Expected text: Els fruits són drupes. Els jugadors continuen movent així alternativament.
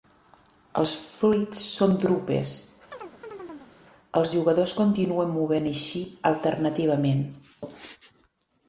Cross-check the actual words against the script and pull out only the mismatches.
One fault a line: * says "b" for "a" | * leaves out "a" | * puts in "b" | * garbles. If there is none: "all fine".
all fine